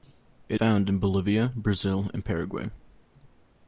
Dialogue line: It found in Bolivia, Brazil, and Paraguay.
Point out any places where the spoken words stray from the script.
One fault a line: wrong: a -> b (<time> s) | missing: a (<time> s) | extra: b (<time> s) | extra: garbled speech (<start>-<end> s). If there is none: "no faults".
no faults